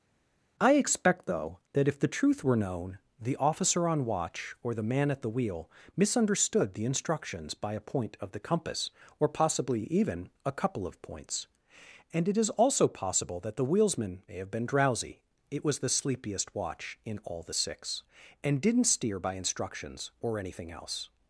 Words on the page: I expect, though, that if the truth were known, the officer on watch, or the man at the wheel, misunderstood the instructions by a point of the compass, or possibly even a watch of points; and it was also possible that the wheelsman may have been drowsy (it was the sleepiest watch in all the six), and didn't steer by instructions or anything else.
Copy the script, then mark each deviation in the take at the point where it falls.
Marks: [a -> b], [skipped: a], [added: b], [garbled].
I expect, though, that if the truth were known, the officer on watch, or the man at the wheel, misunderstood the instructions by a point of the compass, or possibly even a [watch -> couple] of points; and it [was -> is] also possible that the wheelsman may have been drowsy (it was the sleepiest watch in all the six), and didn't steer by instructions or anything else.